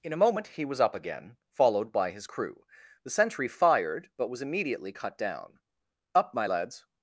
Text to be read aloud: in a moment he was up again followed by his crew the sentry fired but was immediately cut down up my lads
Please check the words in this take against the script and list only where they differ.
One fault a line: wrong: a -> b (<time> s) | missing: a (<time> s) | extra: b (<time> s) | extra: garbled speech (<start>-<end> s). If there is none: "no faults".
no faults